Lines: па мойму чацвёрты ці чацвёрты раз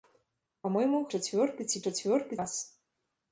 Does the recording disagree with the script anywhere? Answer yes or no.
no